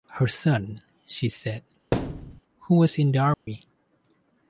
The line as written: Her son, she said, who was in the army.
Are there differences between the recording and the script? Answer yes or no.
no